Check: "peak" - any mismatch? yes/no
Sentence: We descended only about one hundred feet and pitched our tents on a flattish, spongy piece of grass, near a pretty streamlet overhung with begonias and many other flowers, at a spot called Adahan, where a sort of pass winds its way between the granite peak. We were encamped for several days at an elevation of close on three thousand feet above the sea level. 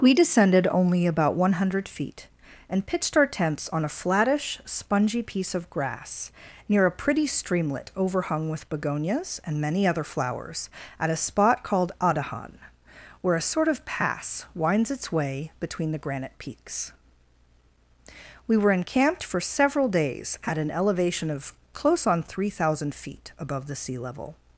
yes